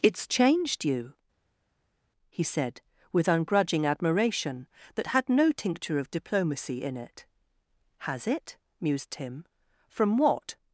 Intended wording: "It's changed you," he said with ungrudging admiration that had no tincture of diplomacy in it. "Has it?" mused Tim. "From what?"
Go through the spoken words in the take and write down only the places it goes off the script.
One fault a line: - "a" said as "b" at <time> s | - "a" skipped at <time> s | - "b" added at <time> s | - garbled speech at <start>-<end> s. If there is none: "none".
none